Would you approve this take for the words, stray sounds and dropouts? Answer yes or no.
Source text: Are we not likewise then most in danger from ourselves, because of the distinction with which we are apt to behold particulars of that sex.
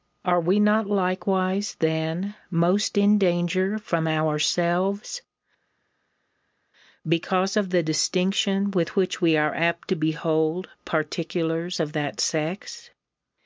yes